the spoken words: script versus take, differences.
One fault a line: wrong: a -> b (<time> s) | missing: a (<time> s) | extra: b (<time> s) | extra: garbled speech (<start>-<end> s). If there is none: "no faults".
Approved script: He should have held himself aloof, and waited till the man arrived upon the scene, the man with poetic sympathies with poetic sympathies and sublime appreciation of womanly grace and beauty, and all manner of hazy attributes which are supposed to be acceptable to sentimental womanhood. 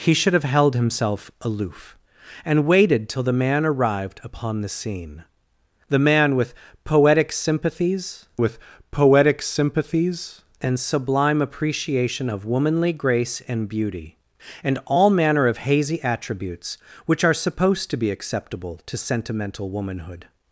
no faults